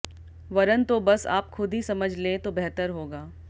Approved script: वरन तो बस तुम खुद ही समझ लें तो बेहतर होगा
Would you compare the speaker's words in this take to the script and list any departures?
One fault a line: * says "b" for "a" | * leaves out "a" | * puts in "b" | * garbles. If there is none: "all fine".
* says "आप" for "तुम"